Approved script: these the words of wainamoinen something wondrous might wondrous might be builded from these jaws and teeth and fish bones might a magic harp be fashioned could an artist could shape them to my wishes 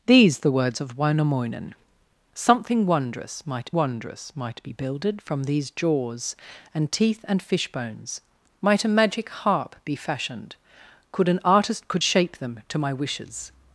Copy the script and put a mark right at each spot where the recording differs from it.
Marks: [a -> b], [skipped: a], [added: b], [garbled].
these the words of wainamoinen something wondrous might wondrous might be builded from these jaws and teeth and fish bones might a magic harp be fashioned could an artist could shape them to my wishes